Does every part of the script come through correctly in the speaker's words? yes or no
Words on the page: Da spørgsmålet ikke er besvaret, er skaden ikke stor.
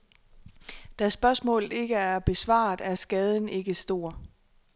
yes